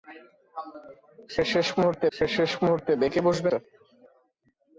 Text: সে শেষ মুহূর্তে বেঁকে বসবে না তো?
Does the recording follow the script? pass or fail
fail